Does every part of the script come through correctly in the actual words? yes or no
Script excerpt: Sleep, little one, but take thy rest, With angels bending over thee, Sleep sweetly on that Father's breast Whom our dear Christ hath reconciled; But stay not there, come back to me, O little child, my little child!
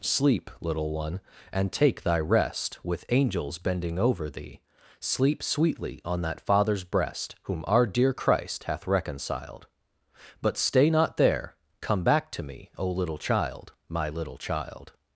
no